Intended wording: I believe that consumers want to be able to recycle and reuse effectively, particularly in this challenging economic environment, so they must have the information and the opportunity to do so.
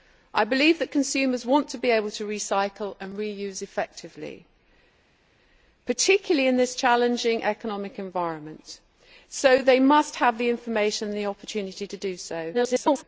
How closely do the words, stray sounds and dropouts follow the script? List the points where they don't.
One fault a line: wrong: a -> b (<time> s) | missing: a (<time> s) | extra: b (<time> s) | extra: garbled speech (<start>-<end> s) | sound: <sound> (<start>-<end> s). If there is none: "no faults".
extra: garbled speech (12.5-13.0 s)